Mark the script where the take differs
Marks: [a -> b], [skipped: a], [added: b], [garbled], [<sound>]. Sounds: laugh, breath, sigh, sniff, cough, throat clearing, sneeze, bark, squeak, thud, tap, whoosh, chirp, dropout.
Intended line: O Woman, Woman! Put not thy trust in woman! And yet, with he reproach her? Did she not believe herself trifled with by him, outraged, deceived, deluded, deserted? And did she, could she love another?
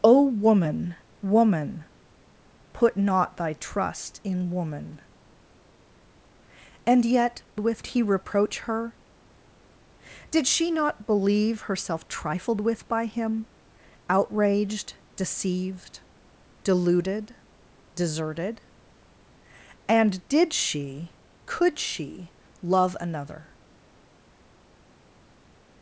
O Woman, Woman! Put not thy trust in woman! And yet, with he reproach her? Did she not believe herself trifled with by him, outraged, deceived, deluded, deserted? And did she, could she love another?